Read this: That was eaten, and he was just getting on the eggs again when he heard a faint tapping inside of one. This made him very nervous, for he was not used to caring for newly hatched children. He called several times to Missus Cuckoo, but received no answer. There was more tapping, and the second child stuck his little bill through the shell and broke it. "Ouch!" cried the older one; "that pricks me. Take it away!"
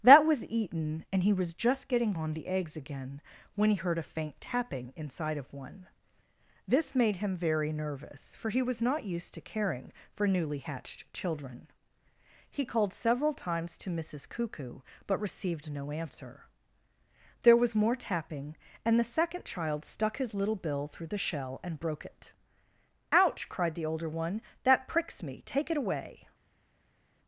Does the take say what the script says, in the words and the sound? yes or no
yes